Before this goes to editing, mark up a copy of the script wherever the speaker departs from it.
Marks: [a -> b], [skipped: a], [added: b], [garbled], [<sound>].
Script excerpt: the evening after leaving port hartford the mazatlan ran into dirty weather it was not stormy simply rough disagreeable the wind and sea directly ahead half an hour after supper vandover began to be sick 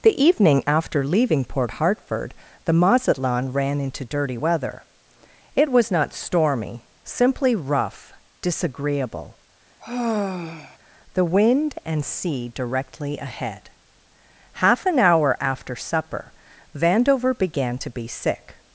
the evening after leaving port hartford the mazatlan ran into dirty weather it was not stormy simply rough disagreeable [sigh] the wind and sea directly ahead half an hour after supper vandover began to be sick